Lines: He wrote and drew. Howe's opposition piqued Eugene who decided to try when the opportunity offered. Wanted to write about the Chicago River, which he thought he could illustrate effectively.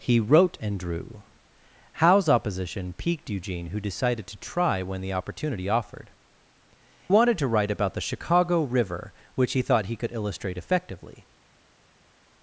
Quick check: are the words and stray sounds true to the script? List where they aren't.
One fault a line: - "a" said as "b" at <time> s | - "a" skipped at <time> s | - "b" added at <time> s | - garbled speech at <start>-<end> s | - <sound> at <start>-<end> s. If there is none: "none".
none